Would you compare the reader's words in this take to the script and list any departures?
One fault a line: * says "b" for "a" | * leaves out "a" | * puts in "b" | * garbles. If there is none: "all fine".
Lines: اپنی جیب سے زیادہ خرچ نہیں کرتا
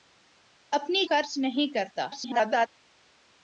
* leaves out "جیب سے زیادہ"
* garbles